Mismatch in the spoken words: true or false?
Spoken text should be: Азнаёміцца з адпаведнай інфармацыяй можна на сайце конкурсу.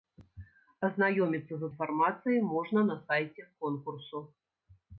true